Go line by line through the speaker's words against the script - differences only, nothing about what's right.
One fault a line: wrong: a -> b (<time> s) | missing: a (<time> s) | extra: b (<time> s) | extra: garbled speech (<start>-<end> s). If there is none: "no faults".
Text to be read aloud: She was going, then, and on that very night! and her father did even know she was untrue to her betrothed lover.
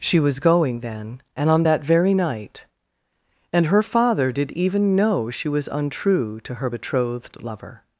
no faults